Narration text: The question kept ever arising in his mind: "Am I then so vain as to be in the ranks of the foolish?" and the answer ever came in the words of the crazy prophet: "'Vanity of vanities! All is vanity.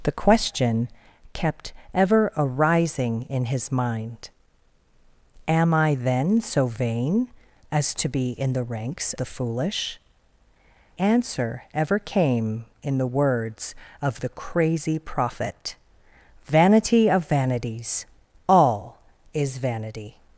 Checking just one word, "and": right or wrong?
wrong